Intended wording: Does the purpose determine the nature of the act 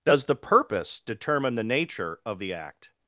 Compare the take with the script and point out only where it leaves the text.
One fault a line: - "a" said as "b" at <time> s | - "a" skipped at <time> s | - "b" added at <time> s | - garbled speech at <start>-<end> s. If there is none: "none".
none